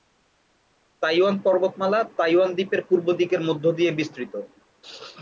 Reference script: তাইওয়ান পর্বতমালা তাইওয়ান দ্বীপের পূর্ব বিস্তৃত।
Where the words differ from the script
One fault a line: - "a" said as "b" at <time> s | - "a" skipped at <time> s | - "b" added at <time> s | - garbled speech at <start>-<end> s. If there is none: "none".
- "দিকের মধ্য দিয়ে" added at 3.1 s